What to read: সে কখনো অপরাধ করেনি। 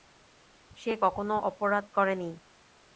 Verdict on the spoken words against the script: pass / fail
pass